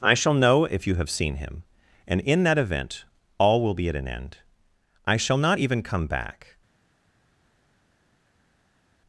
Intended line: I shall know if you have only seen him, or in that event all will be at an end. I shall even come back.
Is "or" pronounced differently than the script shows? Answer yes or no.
yes